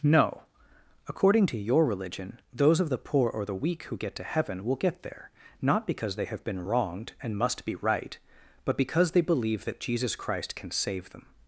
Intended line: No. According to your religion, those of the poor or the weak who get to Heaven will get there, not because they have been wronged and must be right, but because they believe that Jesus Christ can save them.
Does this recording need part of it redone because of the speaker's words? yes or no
no